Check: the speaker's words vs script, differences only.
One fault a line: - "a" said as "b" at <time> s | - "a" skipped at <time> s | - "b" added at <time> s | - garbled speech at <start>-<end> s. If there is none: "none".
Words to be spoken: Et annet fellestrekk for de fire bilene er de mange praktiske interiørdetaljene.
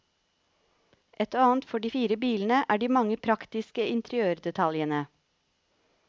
- "fellestrekk" skipped at 1.7 s